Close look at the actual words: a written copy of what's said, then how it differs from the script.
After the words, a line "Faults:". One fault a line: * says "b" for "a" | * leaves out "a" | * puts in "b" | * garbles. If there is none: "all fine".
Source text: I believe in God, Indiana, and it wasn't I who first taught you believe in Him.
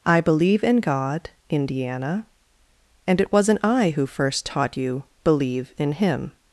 I believe in God, Indiana, and it wasn't I who first taught you believe in Him.
Faults:
all fine